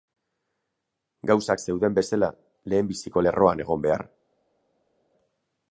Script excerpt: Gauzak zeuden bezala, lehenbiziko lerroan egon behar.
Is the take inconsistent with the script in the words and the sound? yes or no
no